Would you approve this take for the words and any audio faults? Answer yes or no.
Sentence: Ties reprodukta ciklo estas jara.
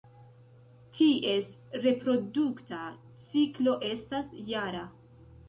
yes